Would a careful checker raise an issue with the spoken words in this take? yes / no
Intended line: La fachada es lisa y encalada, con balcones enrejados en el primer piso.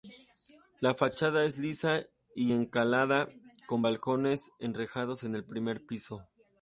no